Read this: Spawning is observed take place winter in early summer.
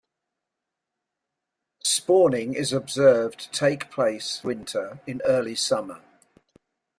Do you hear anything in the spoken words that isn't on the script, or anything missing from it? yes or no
no